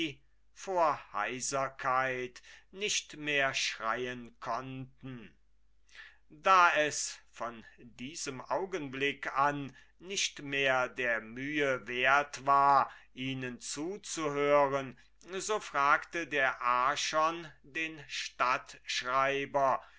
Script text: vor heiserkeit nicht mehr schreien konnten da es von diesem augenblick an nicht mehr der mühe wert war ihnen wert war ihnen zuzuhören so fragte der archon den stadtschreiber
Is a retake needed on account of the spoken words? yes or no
yes